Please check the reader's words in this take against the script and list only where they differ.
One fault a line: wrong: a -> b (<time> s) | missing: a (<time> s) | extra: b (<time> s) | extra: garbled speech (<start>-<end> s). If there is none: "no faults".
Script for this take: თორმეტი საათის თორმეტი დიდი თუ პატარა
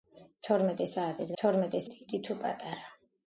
no faults